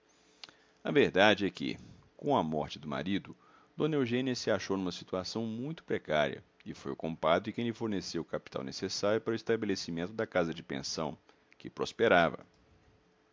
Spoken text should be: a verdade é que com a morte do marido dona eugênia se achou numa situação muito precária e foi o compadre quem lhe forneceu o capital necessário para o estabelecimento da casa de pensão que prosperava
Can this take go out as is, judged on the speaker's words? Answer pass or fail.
pass